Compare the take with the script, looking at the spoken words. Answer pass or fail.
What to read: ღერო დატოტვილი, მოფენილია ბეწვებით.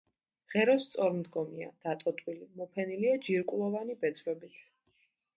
fail